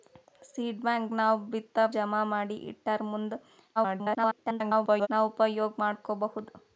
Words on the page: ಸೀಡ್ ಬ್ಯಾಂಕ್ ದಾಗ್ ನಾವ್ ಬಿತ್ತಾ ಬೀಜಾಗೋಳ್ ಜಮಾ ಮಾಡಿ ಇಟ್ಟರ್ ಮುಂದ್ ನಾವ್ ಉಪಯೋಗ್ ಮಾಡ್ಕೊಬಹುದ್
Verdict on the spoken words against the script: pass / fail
fail